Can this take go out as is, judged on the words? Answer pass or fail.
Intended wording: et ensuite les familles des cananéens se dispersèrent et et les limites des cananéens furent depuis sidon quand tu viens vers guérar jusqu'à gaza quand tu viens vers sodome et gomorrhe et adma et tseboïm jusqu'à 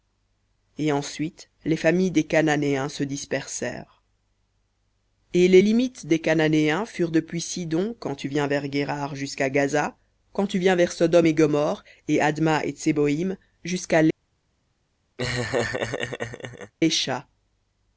fail